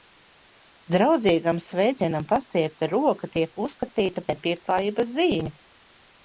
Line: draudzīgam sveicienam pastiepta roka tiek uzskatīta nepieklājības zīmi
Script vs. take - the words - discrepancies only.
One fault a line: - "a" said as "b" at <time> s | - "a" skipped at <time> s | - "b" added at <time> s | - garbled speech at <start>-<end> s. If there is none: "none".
none